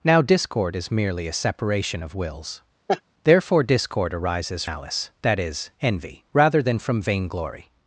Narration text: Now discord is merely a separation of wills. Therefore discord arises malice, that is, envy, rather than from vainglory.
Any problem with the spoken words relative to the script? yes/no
no